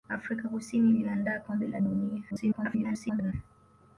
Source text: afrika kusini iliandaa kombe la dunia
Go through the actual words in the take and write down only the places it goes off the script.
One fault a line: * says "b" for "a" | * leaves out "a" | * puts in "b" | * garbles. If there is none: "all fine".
* garbles